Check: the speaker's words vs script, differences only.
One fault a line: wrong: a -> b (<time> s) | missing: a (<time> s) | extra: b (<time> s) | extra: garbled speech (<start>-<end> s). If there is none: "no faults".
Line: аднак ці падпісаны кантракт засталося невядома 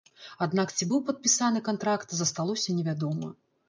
extra: быў (0.9 s)